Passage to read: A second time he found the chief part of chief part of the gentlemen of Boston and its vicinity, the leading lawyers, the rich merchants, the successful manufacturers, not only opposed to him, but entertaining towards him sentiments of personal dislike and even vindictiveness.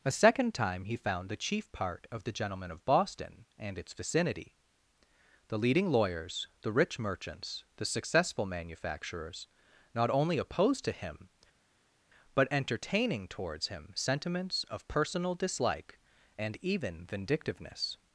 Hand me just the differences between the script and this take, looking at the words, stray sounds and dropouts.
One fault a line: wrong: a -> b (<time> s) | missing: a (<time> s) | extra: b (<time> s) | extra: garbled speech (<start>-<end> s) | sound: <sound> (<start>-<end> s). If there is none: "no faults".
missing: chief part of (2.2 s)